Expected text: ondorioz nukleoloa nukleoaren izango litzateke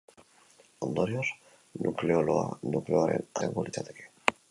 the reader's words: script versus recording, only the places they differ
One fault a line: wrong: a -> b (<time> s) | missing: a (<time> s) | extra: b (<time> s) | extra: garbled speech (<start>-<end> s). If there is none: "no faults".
no faults